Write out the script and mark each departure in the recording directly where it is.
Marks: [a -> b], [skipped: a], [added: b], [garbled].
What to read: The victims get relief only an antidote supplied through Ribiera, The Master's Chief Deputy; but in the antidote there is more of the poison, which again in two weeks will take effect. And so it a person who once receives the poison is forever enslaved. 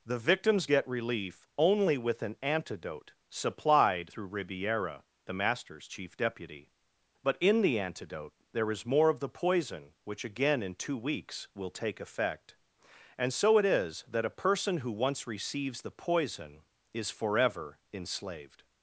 The victims get relief only [added: with] an antidote supplied through Ribiera, The Master's Chief Deputy; but in the antidote there is more of the poison, which again in two weeks will take effect. And so it [added: is that] a person who once receives the poison is forever enslaved.